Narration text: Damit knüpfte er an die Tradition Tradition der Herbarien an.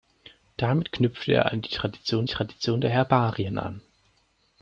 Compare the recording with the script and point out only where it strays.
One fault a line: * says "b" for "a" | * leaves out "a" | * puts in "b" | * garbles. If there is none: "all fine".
all fine